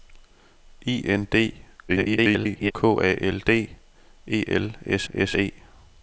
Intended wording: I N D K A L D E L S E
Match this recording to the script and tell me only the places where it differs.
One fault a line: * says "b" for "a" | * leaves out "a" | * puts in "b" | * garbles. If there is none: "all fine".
* garbles
* puts in "S"